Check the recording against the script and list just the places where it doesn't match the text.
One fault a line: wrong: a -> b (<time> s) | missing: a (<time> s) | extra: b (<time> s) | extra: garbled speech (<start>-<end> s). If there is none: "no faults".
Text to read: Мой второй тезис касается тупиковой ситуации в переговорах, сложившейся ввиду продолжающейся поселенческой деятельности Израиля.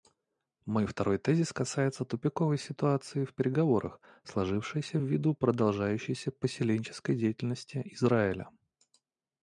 no faults